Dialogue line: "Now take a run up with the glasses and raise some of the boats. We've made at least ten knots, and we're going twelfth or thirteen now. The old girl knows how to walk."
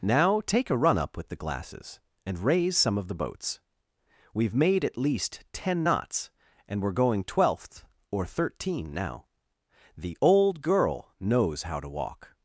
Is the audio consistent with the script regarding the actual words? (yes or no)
yes